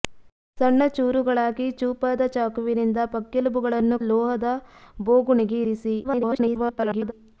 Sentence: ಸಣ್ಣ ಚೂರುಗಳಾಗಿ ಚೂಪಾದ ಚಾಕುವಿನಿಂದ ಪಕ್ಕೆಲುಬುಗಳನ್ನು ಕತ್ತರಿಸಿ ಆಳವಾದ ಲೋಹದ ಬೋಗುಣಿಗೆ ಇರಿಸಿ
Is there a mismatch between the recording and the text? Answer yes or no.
yes